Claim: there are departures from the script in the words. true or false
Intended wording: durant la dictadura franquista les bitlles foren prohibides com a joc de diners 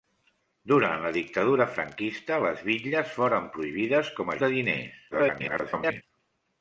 true